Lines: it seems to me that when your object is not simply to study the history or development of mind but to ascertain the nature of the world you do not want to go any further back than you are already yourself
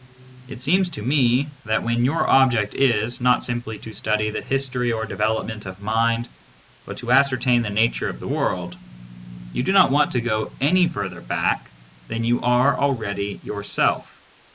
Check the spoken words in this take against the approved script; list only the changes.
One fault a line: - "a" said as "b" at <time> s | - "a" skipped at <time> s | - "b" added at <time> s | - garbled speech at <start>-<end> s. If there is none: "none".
none